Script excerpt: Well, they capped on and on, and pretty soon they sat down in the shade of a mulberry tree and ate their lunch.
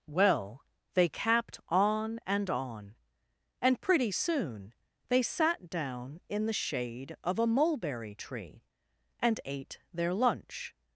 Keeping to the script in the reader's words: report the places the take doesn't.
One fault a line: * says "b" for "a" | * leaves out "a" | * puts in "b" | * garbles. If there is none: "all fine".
all fine